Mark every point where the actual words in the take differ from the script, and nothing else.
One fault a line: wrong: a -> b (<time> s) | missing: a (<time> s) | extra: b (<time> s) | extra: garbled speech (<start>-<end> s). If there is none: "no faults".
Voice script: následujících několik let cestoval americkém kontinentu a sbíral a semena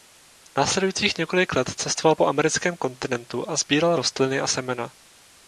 extra: po (2.1 s)
extra: rostliny (3.9 s)